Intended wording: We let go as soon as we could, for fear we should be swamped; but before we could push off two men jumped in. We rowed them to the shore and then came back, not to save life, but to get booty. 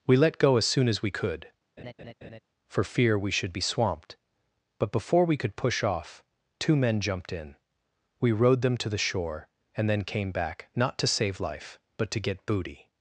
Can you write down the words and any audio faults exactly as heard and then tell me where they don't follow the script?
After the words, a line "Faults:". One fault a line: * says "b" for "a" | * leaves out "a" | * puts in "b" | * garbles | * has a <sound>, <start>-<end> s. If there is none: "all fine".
We let go as soon as we could, for fear we should be swamped; but before we could push off two men jumped in. We rowed them to the shore and then came back, not to save life, but to get booty.
Faults:
* has a laugh, 1.8-2.4 s